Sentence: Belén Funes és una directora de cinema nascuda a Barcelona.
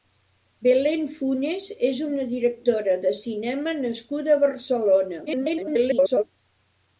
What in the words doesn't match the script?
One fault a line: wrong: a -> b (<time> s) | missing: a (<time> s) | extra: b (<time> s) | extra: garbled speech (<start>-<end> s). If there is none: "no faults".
extra: garbled speech (5.3-6.2 s)